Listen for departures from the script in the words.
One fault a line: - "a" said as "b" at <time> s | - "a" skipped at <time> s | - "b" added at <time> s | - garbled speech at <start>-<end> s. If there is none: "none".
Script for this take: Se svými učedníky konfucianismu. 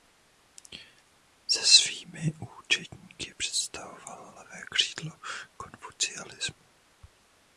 - "představoval levé křídlo" added at 3.4 s